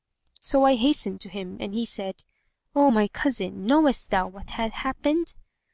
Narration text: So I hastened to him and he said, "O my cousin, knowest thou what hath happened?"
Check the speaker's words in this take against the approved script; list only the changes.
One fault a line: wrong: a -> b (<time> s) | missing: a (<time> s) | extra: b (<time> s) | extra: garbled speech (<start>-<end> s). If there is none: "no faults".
no faults